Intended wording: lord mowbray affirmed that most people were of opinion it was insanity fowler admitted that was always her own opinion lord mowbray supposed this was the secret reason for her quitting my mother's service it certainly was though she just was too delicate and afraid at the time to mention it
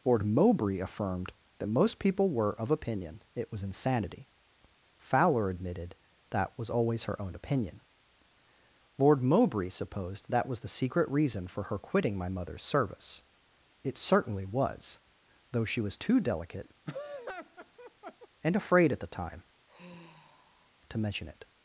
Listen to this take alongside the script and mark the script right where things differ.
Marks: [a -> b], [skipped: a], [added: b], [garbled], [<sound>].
lord mowbray affirmed that most people were of opinion it was insanity fowler admitted that was always her own opinion lord mowbray supposed [this -> that] was the secret reason for her quitting my mother's service it certainly was though she [skipped: just] was too delicate [laugh] and afraid at the time [sigh] to mention it